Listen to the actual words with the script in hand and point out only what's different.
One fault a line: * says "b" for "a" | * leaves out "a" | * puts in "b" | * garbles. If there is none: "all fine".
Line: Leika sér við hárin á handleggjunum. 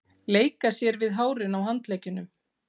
all fine